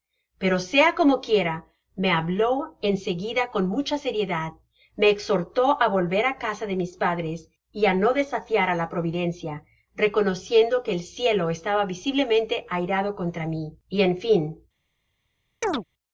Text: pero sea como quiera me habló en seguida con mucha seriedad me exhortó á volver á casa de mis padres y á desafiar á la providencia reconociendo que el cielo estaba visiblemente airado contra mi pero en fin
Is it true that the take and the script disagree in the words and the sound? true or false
true